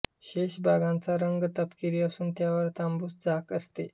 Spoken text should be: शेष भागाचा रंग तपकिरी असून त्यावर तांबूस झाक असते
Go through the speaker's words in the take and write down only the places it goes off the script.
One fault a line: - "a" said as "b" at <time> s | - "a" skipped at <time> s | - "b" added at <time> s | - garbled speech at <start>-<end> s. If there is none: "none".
none